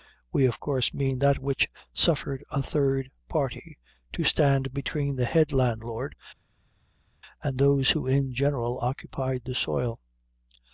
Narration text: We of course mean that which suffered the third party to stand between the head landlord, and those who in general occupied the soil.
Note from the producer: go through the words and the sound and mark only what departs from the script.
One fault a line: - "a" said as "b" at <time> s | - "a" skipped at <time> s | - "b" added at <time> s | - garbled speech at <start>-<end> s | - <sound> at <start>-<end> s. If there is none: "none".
- "the" said as "a" at 2.5 s